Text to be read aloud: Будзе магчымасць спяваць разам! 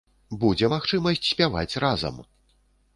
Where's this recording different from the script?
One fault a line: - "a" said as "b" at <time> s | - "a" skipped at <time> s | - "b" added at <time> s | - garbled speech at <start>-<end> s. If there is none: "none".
none